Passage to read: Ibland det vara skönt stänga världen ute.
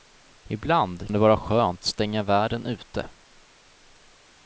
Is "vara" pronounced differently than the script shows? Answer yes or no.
no